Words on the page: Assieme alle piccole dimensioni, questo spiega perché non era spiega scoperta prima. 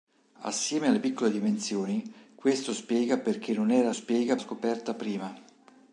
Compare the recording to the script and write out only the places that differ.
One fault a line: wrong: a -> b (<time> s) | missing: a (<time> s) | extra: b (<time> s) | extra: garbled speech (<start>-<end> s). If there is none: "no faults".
no faults